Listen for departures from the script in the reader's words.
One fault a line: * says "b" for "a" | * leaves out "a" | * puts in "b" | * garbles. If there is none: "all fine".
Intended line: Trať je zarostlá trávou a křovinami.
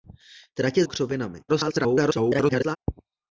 * leaves out "zarostlá trávou"
* garbles